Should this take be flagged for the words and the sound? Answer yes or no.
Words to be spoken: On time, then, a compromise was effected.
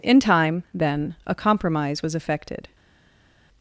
yes